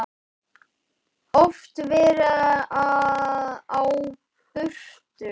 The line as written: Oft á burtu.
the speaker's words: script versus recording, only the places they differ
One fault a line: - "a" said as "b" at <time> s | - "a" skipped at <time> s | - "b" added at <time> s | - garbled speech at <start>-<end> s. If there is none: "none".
- "verið" added at 1.9 s